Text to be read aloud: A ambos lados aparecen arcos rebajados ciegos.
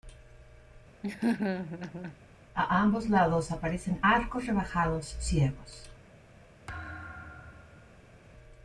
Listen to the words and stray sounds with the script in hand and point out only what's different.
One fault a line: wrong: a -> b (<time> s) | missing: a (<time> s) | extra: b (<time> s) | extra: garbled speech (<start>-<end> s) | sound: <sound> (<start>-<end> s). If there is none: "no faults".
sound: laugh (1.0-2.2 s)
sound: thud (6.7-8.2 s)